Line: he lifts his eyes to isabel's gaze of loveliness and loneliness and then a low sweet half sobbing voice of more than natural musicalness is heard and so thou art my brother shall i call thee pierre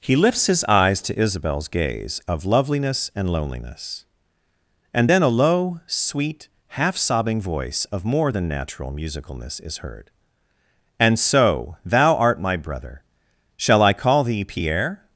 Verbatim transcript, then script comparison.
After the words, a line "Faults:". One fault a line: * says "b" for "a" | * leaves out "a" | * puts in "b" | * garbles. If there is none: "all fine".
he lifts his eyes to isabel's gaze of loveliness and loneliness and then a low sweet half sobbing voice of more than natural musicalness is heard and so thou art my brother shall i call thee pierre
Faults:
all fine